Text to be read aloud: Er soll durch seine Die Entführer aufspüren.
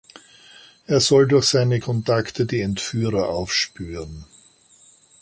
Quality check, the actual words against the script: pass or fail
fail